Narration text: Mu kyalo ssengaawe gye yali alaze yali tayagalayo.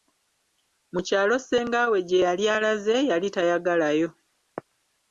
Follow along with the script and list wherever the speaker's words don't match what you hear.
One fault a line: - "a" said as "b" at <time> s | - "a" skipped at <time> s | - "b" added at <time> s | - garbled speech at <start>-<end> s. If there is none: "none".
none